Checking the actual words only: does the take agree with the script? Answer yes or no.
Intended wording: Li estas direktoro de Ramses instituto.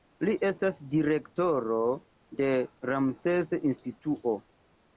yes